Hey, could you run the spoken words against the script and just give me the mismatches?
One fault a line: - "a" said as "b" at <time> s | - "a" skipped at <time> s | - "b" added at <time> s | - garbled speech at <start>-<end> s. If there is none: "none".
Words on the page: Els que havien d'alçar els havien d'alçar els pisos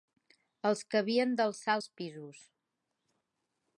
- "havien d'alçar els" skipped at 1.9 s